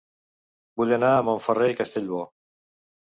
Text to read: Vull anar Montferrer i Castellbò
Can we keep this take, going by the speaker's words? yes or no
no